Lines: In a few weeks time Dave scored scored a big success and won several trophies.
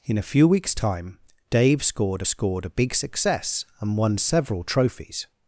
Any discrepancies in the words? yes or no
no